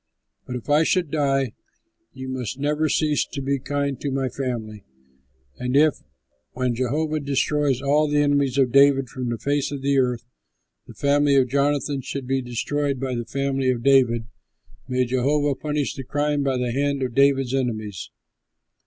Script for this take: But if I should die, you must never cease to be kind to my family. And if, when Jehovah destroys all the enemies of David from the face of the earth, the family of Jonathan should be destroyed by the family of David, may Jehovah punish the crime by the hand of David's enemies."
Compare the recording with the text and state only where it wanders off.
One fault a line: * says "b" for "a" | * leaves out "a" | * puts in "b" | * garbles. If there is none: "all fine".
all fine